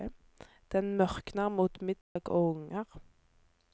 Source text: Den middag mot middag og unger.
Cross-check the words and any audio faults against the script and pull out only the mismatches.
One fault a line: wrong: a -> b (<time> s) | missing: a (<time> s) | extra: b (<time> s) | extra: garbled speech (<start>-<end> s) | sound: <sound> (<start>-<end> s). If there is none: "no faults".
wrong: middag -> mørkner (1.0 s)
sound: dropout (2.0-2.2 s)